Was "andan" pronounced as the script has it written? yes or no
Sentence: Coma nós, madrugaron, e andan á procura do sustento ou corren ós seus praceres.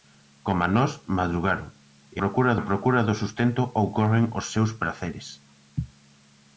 no